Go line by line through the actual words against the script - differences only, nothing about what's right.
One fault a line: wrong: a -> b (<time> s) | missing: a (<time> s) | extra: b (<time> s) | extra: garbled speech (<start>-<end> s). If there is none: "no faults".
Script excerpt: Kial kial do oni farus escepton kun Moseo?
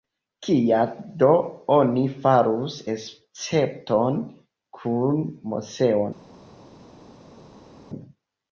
missing: kial (0.9 s)